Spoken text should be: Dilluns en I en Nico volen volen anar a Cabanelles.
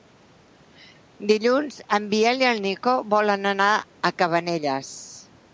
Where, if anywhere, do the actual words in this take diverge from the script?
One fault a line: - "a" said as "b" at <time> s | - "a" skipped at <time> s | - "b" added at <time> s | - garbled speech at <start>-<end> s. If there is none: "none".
- "Biel" added at 2.1 s
- "volen" skipped at 3.5 s